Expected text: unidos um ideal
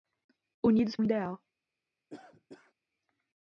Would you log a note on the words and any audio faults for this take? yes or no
yes